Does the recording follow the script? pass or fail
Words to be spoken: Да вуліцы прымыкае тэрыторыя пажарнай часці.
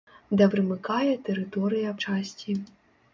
fail